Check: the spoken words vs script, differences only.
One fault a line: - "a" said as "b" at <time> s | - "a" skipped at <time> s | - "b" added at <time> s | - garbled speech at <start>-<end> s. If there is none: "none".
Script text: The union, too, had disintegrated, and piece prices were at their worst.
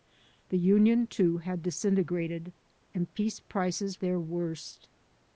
- "were at" skipped at 4.0 s